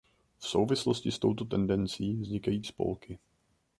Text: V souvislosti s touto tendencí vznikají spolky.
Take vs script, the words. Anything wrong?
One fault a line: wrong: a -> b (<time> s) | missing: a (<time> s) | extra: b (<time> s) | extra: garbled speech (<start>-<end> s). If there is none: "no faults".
no faults